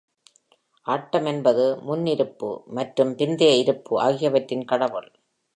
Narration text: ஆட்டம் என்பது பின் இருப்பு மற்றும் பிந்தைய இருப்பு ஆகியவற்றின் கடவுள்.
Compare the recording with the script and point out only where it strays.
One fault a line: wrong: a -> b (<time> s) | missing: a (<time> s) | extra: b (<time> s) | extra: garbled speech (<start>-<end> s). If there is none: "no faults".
wrong: பின் -> முன் (1.8 s)